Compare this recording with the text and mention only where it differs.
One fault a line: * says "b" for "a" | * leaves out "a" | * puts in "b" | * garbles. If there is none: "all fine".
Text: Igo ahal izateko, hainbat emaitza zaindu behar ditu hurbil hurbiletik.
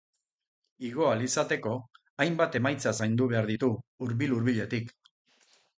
all fine